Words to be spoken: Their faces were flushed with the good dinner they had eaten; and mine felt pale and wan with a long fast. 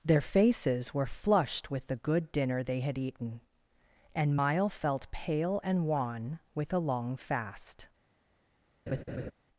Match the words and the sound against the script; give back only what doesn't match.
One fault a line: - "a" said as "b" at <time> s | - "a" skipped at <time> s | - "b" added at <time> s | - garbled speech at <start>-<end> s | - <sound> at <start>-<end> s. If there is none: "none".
- "mine" said as "mile" at 4.3 s
- laugh at 8.9-9.3 s